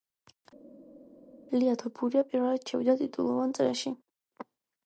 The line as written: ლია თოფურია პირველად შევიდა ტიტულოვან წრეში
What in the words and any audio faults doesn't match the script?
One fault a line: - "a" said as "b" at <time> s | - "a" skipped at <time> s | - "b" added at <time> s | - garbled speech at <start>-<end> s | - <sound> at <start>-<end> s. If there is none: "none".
none